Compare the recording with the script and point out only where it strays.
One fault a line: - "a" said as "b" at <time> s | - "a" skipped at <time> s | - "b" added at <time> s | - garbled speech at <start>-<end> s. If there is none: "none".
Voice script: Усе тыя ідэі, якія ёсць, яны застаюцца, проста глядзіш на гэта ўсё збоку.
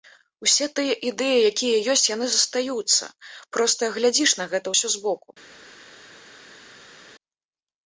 none